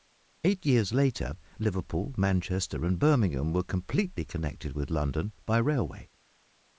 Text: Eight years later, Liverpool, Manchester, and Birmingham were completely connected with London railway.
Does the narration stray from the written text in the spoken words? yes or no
yes